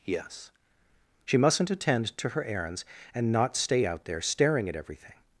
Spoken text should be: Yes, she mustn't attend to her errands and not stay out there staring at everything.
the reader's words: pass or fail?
pass